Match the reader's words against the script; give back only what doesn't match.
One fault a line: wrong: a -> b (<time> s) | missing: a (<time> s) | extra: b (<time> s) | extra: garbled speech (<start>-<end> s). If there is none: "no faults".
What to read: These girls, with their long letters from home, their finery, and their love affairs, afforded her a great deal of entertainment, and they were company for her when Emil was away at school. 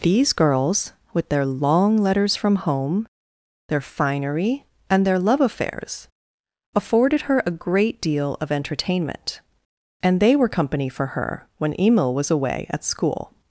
no faults